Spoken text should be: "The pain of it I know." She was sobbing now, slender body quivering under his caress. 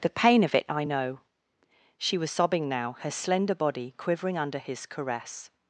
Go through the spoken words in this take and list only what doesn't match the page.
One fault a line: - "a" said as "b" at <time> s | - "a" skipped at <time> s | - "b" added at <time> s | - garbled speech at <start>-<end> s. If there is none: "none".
- "her" added at 3.0 s